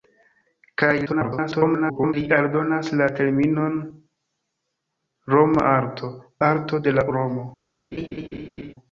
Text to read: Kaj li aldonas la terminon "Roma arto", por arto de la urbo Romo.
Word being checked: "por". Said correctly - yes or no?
no